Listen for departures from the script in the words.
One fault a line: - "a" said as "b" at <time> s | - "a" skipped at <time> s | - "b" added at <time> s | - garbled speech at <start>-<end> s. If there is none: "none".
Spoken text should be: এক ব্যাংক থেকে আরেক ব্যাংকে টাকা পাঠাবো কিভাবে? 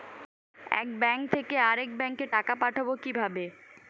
none